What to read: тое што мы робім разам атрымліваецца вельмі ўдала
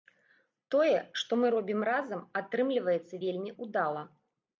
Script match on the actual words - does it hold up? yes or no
yes